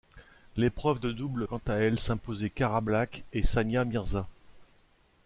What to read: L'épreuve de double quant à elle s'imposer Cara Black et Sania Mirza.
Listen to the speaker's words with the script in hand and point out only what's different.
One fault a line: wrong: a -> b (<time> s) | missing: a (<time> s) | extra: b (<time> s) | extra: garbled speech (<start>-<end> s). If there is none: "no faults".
no faults